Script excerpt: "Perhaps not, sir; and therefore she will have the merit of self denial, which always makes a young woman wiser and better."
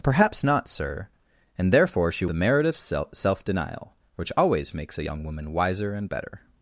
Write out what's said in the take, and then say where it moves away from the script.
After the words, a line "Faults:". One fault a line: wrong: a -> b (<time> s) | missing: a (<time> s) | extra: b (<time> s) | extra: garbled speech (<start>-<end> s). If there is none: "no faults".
"Perhaps not, sir; and therefore she the merit of self denial, which always makes a young woman wiser and better."
Faults:
missing: will have (2.2 s)